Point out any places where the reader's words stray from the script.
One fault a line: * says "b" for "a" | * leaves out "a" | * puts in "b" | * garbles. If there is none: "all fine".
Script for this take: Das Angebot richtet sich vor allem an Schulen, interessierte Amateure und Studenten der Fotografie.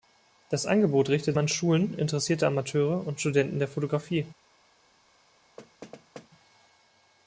* leaves out "sich vor allem"